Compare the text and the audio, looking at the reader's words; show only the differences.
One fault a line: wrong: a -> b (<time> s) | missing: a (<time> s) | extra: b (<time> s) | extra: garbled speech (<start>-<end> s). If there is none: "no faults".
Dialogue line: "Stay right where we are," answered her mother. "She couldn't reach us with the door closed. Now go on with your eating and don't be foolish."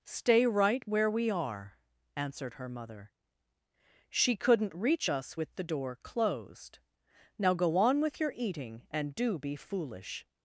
wrong: don't -> do (9.1 s)